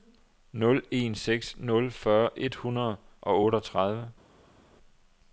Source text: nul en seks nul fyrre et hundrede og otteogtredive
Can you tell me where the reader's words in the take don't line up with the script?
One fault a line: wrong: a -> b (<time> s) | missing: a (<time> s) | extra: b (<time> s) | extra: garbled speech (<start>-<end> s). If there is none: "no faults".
no faults